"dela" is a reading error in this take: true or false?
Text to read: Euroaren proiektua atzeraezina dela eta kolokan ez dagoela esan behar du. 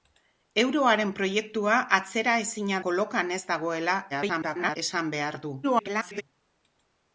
true